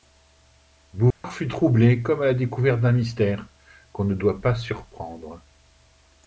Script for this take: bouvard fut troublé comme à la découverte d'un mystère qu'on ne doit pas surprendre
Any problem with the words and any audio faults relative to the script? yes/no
yes